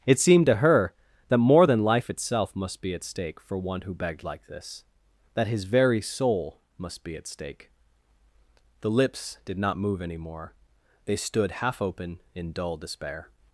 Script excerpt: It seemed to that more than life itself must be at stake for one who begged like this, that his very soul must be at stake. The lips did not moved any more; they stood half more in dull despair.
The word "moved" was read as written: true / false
false